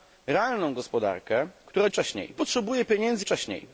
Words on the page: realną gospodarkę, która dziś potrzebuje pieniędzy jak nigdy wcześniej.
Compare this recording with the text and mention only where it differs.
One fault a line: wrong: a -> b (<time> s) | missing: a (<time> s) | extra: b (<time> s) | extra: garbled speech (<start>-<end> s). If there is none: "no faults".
wrong: dziś -> wcześniej (1.9 s)
missing: jak nigdy (3.3 s)